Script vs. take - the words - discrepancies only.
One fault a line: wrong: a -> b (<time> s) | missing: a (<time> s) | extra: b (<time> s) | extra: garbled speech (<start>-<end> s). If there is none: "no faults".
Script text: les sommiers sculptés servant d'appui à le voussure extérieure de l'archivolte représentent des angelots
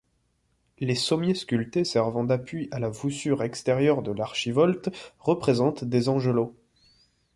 wrong: le -> la (2.8 s)